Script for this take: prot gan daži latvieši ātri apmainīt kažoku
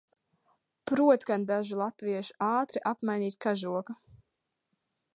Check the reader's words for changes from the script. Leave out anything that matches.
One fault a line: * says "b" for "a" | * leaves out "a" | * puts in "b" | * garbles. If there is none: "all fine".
all fine